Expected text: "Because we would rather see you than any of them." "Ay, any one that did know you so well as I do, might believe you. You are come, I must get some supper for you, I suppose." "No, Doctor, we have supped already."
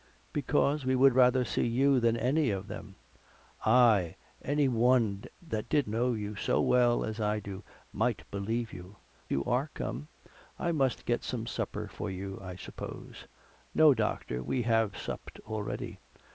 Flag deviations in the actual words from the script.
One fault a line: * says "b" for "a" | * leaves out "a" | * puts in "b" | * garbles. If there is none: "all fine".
all fine